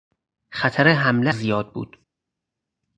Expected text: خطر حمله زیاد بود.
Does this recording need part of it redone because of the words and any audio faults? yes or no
no